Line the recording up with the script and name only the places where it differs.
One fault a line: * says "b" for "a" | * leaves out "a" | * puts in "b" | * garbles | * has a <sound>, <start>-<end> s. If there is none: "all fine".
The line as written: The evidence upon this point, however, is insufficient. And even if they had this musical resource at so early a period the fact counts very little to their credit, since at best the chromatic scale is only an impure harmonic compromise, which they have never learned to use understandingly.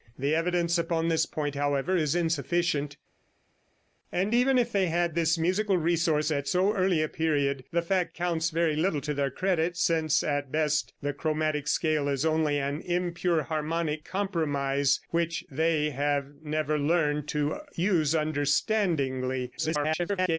* garbles